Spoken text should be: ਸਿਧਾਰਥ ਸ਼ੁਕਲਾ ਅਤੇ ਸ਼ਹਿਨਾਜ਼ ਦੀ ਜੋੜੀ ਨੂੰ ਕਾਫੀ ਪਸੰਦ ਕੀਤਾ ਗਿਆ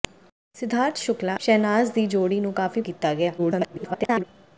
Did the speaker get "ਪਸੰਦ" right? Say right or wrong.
wrong